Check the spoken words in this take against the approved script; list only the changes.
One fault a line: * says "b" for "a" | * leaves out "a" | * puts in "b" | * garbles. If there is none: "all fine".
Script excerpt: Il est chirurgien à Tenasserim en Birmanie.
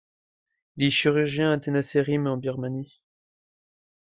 all fine